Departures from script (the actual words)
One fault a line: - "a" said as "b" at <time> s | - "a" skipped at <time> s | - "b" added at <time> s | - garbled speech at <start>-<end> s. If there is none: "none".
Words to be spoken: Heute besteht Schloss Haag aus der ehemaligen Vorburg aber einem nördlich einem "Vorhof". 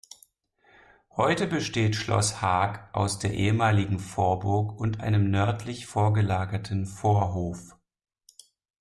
- "aber" said as "und" at 4.8 s
- "einem" said as "vorgelagerten" at 5.8 s